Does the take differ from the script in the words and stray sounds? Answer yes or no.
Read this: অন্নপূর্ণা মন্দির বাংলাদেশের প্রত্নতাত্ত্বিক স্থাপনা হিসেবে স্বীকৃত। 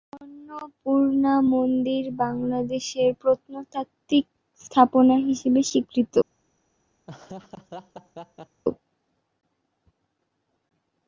yes